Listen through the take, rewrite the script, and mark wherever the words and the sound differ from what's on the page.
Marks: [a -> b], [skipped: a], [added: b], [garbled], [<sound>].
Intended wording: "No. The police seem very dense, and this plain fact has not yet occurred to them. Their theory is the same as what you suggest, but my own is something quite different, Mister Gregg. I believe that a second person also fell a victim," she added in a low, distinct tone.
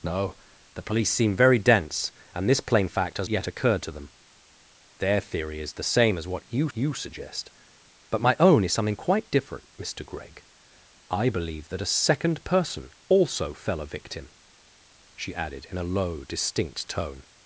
"No. The police seem very dense, and this plain fact has [skipped: not] yet occurred to them. Their theory is the same as what you [added: you] suggest, but my own is something quite different, Mister Gregg. I believe that a second person also fell a victim," she added in a low, distinct tone.